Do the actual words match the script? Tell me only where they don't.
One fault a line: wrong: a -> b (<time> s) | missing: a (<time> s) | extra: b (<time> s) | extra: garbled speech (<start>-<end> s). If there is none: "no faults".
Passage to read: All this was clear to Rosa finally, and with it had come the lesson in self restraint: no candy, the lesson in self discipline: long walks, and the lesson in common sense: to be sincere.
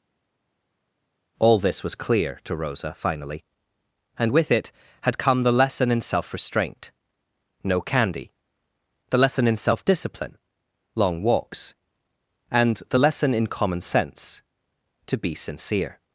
no faults